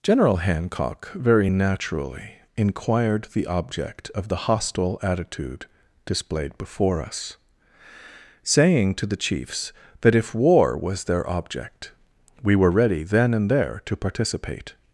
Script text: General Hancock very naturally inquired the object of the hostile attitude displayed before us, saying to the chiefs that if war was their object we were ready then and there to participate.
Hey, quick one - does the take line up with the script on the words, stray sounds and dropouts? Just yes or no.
yes